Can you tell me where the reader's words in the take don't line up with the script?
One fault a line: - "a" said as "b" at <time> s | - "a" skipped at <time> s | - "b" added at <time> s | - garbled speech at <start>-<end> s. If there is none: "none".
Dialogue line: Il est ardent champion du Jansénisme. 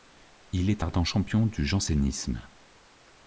none